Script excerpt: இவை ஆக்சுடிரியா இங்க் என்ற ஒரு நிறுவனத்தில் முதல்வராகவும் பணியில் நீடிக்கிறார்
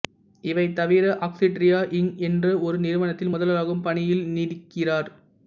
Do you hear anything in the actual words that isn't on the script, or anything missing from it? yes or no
yes